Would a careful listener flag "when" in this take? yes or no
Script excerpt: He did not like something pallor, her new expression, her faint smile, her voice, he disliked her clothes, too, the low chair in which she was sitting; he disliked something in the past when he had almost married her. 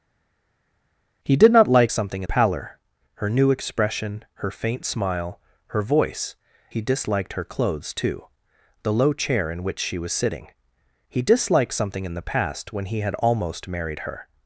no